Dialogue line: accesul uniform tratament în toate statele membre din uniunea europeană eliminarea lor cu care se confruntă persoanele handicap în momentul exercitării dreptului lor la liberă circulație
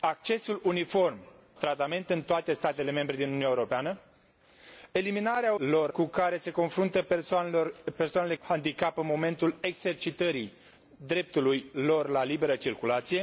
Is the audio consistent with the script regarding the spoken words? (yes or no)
yes